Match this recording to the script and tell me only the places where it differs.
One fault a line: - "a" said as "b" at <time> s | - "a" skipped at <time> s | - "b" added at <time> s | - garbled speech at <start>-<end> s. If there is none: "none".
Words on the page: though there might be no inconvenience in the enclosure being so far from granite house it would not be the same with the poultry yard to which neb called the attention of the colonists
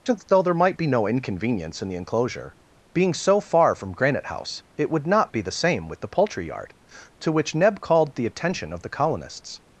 none